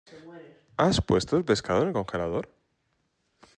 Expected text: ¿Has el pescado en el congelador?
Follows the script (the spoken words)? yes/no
no